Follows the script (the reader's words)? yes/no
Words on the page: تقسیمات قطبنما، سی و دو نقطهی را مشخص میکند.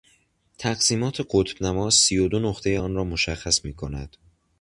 no